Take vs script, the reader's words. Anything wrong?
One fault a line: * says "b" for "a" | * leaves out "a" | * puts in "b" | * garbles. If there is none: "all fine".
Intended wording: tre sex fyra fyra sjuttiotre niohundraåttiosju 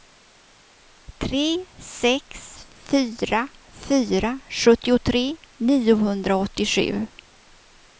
all fine